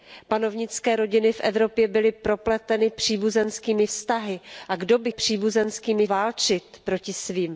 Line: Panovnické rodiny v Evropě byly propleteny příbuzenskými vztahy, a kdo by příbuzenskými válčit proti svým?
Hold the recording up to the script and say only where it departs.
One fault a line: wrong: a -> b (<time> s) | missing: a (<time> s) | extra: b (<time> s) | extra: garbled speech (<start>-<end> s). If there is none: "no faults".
no faults